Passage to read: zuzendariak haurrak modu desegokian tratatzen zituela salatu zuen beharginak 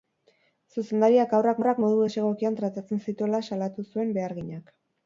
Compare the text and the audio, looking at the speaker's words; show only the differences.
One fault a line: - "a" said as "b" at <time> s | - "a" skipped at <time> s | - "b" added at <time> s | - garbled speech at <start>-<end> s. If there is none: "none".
- "haurrak" added at 1.6 s